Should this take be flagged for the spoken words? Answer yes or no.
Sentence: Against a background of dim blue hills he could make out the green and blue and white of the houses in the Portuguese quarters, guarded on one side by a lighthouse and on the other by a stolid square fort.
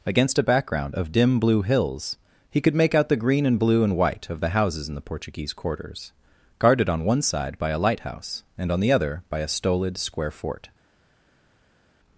no